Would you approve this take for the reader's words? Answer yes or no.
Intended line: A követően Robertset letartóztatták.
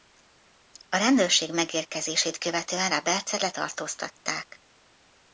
no